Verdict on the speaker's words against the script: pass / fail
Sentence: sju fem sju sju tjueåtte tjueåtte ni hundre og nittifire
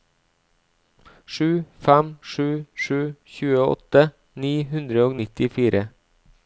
fail